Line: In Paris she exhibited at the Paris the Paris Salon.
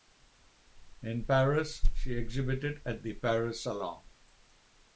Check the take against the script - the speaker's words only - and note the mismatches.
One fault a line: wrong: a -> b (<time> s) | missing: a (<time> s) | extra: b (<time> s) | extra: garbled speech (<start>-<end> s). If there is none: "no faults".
missing: the Paris (3.6 s)